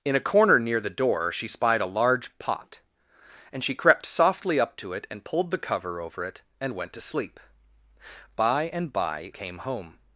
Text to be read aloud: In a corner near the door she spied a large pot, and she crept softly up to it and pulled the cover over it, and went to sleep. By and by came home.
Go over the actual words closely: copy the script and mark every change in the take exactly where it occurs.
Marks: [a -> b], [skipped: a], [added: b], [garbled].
In a corner near the door she spied a large pot, and she crept softly up to it and pulled the cover over it, and went to sleep. By and by came home.